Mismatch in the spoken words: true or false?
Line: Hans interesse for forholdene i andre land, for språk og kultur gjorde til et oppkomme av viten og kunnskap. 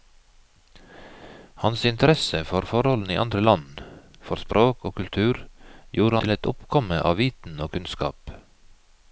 false